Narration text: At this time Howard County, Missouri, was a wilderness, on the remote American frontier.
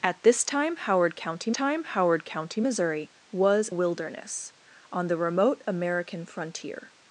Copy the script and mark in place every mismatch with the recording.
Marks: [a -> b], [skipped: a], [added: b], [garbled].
At this time Howard County, [added: time Howard County] Missouri, was [skipped: a] wilderness, on the remote American frontier.